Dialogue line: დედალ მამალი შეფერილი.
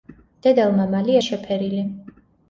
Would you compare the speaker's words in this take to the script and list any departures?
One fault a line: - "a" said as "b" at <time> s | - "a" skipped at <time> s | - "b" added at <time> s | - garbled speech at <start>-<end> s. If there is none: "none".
none